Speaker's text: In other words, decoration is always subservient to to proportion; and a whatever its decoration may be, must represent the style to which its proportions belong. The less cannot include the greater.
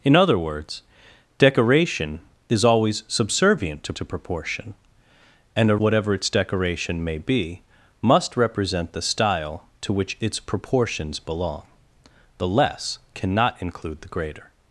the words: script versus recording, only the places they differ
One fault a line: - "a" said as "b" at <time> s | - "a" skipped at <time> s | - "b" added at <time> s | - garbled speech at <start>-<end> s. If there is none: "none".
none